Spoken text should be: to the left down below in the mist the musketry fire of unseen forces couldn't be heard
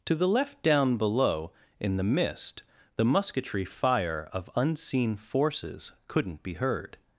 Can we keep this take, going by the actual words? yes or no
yes